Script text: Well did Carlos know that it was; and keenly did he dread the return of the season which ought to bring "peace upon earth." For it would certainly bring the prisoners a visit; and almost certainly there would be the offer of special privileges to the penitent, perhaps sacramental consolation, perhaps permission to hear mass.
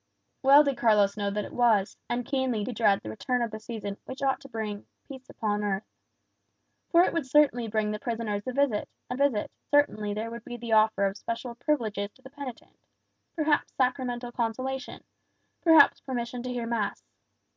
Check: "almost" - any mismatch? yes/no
yes